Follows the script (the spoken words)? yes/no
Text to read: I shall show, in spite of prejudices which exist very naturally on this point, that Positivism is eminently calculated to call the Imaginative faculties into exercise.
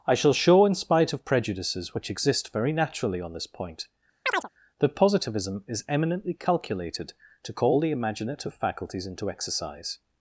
yes